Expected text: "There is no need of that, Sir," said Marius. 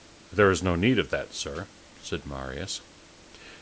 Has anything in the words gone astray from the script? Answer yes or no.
no